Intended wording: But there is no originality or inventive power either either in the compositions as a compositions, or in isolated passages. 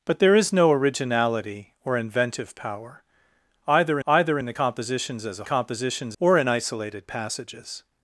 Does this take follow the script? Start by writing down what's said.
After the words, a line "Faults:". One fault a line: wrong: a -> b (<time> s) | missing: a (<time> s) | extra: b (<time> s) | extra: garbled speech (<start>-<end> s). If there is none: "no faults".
But there is no originality or inventive power either either in the compositions as a compositions, or in isolated passages.
Faults:
no faults